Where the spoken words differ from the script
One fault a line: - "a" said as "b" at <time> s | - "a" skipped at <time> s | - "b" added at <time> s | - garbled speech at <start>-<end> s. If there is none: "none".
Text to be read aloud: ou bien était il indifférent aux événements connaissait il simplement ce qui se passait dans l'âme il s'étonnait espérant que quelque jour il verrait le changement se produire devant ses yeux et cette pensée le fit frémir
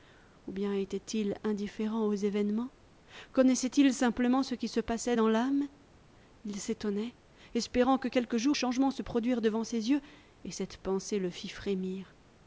- "il verrait le" skipped at 8.6 s